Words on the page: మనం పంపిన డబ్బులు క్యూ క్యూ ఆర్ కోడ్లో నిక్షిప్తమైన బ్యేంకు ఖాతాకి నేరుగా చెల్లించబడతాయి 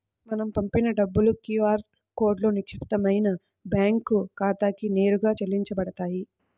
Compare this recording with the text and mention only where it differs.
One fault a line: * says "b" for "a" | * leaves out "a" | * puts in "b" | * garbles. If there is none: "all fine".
* leaves out "క్యూ"